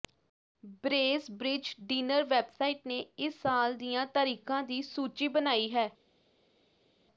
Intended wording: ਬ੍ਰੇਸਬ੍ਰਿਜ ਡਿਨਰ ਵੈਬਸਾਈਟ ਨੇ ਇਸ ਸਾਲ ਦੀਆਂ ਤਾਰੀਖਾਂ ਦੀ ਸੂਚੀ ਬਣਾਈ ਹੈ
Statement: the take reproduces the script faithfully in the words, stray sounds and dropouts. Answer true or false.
true